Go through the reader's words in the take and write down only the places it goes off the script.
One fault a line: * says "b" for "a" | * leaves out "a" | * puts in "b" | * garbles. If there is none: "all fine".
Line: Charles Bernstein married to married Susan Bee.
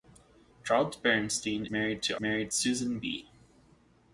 all fine